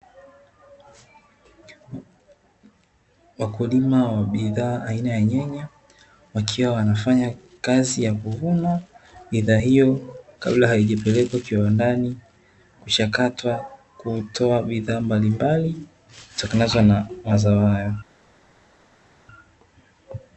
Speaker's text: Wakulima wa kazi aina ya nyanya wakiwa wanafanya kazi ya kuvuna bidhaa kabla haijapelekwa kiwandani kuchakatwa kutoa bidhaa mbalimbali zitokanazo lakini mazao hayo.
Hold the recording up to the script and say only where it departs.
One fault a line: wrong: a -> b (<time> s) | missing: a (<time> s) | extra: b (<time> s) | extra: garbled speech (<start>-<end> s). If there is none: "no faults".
wrong: kazi -> bidhaa (4.2 s)
extra: hiyo (9.5 s)
wrong: lakini -> na (16.8 s)